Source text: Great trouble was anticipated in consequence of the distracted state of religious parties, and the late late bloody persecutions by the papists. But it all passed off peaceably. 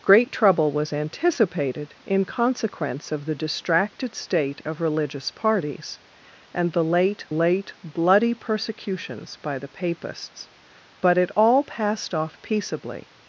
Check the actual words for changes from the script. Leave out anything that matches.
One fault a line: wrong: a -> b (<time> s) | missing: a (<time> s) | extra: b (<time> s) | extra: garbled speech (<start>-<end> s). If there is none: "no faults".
no faults